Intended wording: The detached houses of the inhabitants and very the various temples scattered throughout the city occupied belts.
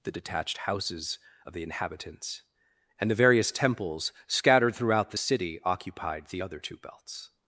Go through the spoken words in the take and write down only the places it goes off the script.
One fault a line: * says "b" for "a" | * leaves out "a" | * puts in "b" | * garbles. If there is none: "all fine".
* leaves out "very"
* puts in "the other two"